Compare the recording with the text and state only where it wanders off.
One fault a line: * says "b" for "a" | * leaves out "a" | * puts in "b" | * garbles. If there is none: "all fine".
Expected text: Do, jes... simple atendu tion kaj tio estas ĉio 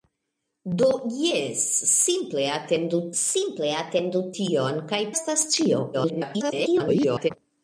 * puts in "simple atendu"
* leaves out "tio"
* garbles